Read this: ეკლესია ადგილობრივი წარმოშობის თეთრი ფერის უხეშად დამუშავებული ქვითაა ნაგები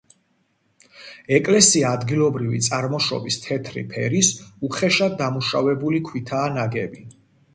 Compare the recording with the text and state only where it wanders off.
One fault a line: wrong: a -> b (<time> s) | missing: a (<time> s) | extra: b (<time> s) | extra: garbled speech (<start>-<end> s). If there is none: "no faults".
no faults